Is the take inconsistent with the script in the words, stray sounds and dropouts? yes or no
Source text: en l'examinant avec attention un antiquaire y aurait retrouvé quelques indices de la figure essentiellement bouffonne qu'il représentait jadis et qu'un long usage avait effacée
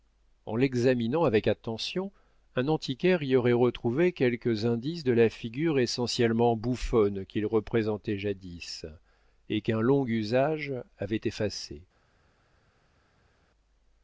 no